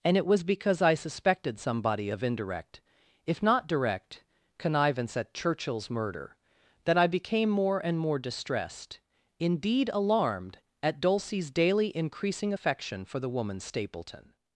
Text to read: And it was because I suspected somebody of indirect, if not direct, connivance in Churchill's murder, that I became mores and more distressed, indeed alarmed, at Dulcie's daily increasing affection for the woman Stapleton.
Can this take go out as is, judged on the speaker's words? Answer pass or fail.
fail